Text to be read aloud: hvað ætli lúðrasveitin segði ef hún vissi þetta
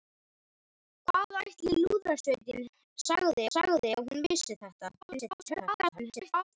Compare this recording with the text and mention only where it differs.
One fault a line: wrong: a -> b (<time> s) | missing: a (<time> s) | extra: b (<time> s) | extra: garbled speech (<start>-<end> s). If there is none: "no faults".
extra: segði (3.5 s)
extra: garbled speech (5.0-6.4 s)